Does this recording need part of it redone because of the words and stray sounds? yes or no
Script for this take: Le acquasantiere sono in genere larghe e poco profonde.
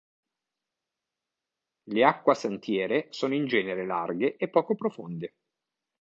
no